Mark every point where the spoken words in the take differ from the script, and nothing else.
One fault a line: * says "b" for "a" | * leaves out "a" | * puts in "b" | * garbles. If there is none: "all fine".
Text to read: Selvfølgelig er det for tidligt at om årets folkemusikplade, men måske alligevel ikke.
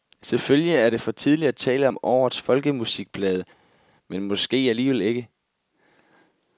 * puts in "tale"